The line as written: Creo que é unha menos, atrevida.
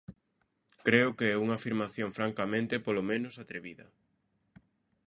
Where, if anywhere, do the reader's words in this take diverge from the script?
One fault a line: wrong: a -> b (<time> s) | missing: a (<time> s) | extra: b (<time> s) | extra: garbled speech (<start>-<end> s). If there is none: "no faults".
extra: afirmación francamente polo (1.6 s)